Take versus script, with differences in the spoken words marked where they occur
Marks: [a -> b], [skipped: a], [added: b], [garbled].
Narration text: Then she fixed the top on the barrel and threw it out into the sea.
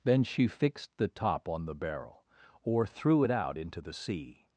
Then she fixed the top on the barrel [and -> or] threw it out into the sea.